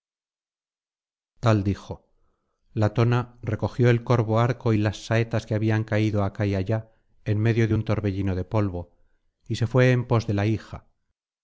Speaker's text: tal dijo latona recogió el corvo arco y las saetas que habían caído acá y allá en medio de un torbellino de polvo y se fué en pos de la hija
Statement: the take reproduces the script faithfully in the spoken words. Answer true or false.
true